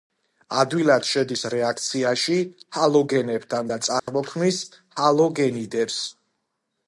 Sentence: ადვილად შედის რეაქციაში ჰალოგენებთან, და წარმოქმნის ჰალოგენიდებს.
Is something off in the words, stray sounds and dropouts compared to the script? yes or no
yes